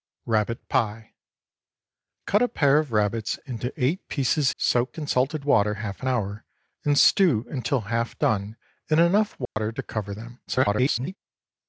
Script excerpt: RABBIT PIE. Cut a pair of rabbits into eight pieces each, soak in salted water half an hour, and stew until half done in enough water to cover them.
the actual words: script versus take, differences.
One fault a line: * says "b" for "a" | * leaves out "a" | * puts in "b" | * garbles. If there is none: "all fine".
* leaves out "each"
* garbles